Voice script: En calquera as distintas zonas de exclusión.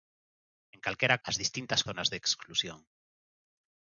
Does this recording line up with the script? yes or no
yes